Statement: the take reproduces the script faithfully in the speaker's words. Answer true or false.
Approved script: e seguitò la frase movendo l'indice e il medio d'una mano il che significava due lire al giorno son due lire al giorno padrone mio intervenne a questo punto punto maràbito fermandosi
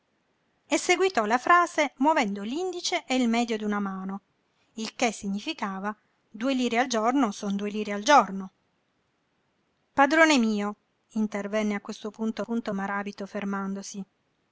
true